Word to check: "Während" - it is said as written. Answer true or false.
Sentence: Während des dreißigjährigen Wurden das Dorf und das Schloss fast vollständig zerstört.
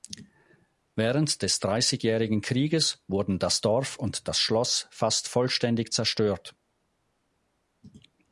true